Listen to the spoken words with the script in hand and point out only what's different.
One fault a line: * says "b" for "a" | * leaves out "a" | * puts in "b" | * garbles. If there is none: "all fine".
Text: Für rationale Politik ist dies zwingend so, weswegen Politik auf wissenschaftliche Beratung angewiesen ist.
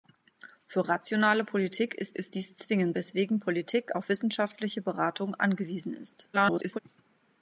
* puts in "ist"
* leaves out "so"
* garbles